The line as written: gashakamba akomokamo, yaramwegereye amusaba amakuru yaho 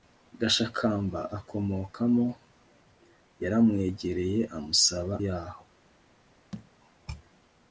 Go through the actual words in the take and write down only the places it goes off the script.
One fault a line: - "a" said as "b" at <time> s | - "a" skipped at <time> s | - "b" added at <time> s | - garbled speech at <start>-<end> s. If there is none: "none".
- "amakuru" skipped at 5.1 s